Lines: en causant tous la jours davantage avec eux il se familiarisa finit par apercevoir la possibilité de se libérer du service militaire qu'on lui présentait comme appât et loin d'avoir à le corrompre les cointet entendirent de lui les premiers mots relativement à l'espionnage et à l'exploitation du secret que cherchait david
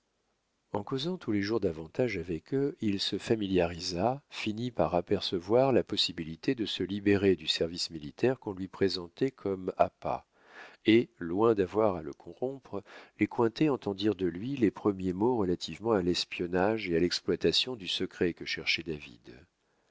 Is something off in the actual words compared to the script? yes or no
yes